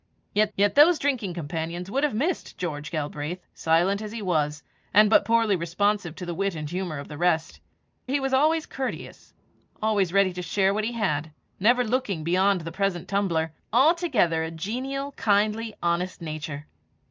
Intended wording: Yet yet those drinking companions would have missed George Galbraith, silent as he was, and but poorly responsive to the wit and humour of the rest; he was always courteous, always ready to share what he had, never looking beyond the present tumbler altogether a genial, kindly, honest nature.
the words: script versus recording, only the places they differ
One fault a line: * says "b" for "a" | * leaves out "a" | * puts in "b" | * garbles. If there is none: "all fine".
all fine